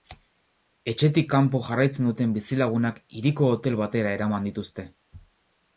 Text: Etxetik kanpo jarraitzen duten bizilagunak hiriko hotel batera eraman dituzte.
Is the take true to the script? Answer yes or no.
yes